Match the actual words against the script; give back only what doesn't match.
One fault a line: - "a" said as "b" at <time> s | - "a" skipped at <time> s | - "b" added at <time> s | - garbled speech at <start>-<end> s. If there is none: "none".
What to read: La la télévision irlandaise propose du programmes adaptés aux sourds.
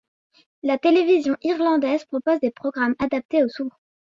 - "la" skipped at 0.8 s
- "du" said as "des" at 2.4 s